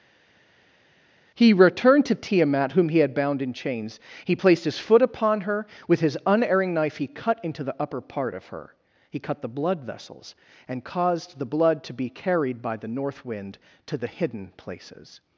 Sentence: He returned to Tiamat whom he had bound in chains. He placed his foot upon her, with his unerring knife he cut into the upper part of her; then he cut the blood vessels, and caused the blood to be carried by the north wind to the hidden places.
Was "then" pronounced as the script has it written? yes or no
no